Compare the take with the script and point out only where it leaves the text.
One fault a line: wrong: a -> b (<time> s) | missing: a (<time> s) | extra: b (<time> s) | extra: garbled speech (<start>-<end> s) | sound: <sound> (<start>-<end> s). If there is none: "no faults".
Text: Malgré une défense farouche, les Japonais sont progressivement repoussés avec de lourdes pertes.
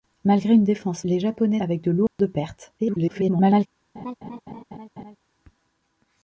missing: farouche (1.0 s)
missing: sont progressivement repoussés (1.6 s)
sound: dropout (2.1-2.2 s)
extra: garbled speech (2.8-3.7 s)
sound: laugh (4.0-5.2 s)